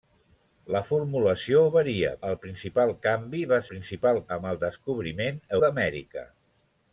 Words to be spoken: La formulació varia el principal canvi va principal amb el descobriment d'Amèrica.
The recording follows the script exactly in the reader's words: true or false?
true